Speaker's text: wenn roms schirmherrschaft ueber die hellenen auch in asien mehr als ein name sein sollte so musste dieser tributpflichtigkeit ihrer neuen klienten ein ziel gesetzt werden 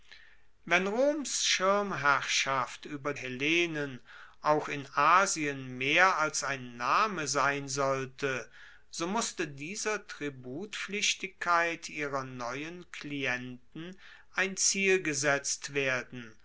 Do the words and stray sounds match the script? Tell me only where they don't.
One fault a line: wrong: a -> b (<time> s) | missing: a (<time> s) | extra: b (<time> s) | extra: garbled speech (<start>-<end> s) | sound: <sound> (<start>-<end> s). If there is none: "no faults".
missing: die (3.1 s)